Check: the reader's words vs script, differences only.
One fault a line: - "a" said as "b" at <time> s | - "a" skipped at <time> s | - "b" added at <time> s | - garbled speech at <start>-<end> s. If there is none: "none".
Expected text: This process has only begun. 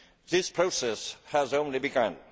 none